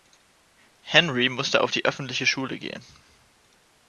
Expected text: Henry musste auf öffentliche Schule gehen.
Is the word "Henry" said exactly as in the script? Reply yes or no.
yes